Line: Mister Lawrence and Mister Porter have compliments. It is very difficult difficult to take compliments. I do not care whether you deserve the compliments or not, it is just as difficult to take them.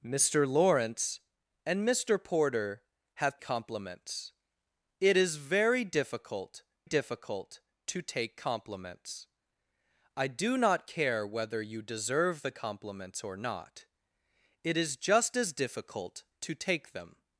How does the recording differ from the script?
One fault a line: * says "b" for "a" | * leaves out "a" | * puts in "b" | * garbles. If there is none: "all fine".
all fine